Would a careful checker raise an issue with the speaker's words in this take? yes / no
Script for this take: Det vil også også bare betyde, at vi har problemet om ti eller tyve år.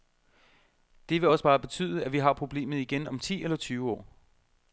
yes